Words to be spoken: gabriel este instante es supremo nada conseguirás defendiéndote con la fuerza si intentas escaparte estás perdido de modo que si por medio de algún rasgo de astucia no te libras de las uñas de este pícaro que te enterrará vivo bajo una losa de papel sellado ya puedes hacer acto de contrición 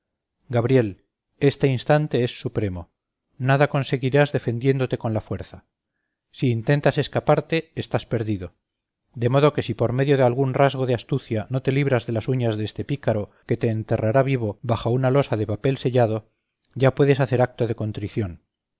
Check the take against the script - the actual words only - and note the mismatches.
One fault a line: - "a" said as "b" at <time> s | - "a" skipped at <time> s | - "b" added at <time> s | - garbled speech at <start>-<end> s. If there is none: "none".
none